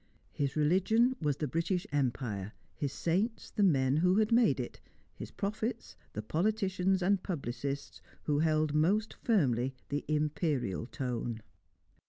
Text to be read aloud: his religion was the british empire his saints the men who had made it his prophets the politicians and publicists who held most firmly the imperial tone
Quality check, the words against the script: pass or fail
pass